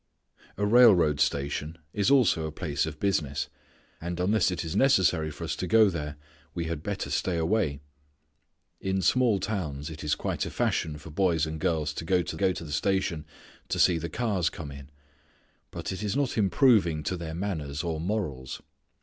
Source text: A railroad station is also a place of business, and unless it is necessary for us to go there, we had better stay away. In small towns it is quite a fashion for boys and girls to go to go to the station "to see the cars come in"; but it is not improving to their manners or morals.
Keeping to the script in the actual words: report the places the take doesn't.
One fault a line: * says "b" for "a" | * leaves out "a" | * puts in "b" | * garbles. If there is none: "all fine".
all fine